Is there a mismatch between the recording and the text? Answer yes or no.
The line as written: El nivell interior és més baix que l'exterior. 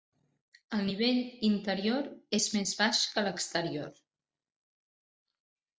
no